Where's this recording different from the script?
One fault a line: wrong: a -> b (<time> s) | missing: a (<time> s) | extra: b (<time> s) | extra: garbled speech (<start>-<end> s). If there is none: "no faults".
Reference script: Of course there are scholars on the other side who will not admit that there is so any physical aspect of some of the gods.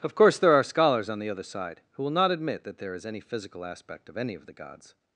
missing: so (3.0 s)
wrong: some -> any (4.2 s)